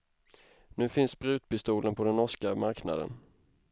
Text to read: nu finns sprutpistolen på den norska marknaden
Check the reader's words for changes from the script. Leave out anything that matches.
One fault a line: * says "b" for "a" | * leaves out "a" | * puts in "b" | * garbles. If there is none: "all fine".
all fine